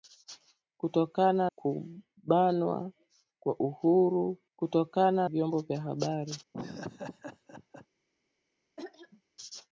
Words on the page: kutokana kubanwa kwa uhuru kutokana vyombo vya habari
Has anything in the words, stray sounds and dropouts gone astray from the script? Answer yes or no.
yes